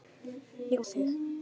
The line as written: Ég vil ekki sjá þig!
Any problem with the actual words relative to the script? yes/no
yes